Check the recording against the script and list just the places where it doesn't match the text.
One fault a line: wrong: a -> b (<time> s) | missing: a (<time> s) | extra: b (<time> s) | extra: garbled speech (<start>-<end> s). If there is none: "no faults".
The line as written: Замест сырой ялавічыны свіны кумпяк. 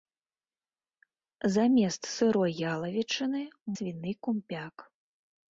no faults